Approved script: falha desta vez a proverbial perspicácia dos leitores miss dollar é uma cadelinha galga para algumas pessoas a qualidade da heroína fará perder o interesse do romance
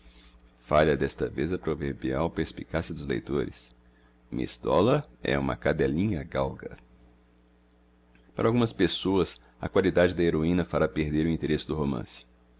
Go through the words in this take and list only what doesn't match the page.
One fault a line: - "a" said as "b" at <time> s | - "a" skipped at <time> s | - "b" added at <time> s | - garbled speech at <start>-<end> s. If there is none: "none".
none